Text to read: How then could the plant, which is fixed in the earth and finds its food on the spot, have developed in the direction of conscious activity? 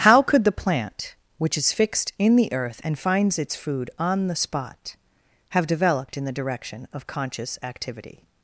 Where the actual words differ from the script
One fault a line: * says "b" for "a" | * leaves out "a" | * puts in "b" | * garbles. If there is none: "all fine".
* leaves out "then"